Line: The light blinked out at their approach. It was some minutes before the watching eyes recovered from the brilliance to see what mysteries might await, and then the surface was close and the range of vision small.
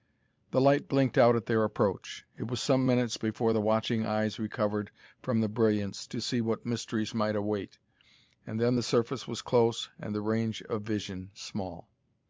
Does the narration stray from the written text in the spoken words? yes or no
no